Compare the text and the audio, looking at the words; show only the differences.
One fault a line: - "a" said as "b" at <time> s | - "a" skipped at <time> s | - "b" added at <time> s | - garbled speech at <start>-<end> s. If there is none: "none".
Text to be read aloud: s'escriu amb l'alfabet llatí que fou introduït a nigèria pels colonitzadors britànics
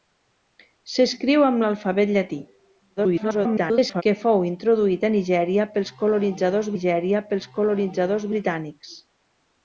- garbled speech at 3.0-4.0 s
- "nigèria pels colonitzadors" added at 6.7 s